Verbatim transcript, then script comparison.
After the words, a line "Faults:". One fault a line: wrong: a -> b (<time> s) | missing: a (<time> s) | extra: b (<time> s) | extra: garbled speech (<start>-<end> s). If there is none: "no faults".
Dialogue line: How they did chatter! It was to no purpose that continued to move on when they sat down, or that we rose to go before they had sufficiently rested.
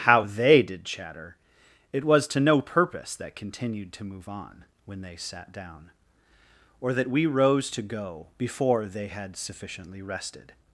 How they did chatter! It was to no purpose that continued to move on when they sat down, or that we rose to go before they had sufficiently rested.
Faults:
no faults